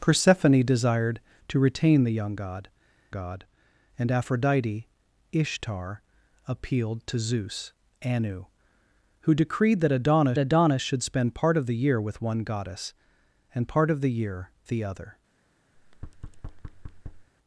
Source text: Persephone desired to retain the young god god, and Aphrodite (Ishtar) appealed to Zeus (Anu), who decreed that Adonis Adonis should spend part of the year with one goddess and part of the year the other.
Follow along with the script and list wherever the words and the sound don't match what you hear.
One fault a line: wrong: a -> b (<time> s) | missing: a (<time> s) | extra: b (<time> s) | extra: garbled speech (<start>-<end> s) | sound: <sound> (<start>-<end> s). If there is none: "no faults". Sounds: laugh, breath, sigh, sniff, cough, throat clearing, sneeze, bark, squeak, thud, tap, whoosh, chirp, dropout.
sound: thud (15.7-17.3 s)